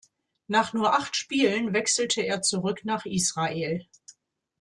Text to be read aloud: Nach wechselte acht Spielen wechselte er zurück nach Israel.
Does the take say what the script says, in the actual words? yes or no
no